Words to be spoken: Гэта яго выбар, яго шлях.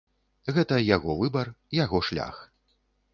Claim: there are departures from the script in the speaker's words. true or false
false